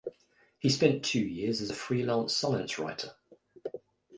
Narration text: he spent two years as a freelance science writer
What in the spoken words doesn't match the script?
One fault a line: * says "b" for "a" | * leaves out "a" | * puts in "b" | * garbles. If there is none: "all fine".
all fine